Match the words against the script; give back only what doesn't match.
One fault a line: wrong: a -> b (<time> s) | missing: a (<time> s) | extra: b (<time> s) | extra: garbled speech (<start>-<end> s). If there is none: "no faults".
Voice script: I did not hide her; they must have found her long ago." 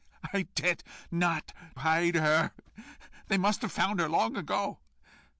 no faults